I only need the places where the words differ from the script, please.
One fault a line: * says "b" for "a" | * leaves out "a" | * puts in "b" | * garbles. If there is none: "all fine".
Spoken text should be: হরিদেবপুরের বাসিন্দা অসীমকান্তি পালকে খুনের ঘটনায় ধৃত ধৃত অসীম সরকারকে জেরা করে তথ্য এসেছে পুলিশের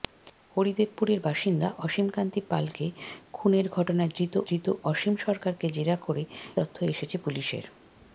all fine